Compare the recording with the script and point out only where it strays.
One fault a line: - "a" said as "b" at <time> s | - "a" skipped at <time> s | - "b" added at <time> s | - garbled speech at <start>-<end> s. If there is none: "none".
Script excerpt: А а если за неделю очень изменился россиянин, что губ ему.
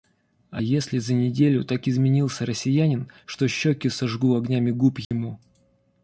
- "а" skipped at 0.6 s
- "очень" said as "так" at 1.6 s
- "щеки сожгу огнями" added at 3.5 s